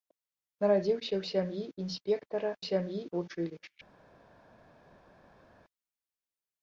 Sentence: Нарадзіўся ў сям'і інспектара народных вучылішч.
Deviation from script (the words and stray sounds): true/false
true